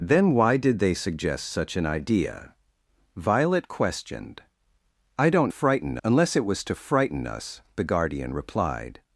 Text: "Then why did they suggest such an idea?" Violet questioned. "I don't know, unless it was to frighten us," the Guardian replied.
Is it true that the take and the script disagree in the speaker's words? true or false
true